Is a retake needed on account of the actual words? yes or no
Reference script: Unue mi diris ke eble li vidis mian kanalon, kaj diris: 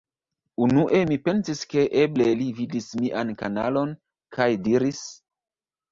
yes